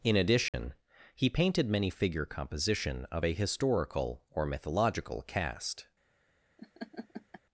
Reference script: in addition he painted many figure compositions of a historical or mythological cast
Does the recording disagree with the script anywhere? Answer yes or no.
yes